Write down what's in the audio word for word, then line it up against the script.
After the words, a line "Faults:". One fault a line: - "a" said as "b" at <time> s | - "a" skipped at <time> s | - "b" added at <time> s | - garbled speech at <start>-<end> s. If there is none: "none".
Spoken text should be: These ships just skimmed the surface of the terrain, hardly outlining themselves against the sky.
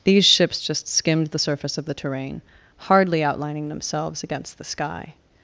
These ships just skimmed the surface of the terrain, hardly outlining themselves against the sky.
Faults:
none